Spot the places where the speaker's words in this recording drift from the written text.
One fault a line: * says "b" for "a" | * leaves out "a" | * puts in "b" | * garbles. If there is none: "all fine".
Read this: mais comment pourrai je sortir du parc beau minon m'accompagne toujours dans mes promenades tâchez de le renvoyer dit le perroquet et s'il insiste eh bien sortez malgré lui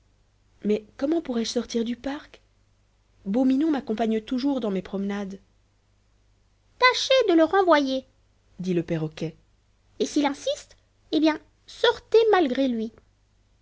all fine